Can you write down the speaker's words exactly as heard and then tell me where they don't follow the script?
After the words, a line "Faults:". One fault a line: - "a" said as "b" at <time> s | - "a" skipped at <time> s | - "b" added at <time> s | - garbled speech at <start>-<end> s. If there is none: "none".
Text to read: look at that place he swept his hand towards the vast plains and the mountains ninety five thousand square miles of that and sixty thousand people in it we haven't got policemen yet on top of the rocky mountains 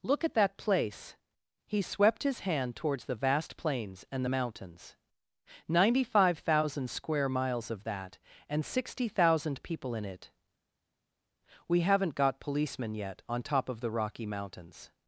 look at that place he swept his hand towards the vast plains and the mountains ninety five thousand square miles of that and sixty thousand people in it we haven't got policemen yet on top of the rocky mountains
Faults:
none